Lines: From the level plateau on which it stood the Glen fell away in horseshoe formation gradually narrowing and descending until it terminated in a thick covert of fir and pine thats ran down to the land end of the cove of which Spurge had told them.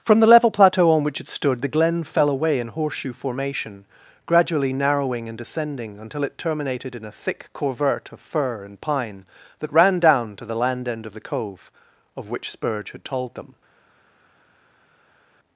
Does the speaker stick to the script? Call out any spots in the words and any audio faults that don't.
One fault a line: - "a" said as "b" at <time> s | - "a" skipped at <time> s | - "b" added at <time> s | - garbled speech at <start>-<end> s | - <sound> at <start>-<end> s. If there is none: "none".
- "thats" said as "that" at 9.6 s